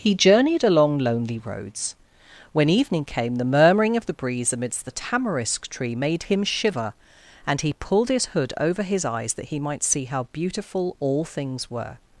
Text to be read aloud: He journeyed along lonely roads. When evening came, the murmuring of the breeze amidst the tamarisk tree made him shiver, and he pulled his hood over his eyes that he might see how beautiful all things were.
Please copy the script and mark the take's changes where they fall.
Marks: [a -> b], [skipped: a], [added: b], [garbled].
He journeyed along lonely roads. When evening came, the murmuring of the breeze amidst the tamarisk tree made him shiver, and he pulled his hood over his eyes that he might see how beautiful all things were.